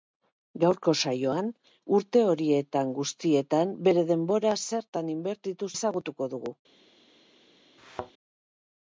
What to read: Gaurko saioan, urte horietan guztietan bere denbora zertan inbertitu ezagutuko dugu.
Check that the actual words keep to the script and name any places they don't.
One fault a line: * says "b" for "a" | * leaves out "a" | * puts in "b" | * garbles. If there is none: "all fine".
all fine